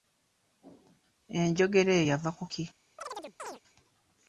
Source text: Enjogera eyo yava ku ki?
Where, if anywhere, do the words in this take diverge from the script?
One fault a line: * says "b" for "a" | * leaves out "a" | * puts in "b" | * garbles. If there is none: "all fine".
all fine